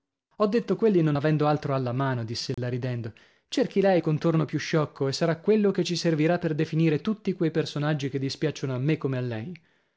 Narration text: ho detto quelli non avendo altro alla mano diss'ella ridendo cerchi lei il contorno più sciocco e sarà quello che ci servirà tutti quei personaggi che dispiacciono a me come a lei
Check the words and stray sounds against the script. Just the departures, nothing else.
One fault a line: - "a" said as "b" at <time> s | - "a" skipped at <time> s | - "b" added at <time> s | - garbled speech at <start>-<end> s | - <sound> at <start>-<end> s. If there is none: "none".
- dropout at 2.5-2.6 s
- "per definire" added at 6.4 s